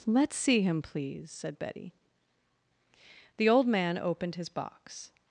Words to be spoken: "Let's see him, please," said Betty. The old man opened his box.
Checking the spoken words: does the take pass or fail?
pass